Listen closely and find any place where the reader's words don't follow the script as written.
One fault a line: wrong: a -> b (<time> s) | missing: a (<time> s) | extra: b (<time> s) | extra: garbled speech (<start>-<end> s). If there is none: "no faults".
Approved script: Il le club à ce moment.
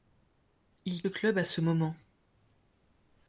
no faults